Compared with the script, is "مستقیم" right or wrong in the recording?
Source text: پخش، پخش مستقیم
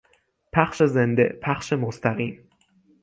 right